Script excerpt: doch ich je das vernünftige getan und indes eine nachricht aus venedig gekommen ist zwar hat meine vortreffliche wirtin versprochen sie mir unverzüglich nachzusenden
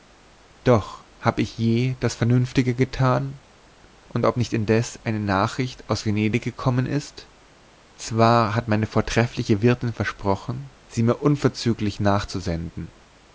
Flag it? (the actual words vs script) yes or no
yes